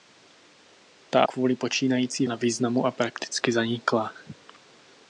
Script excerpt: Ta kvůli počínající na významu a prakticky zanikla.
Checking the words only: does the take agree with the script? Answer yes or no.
yes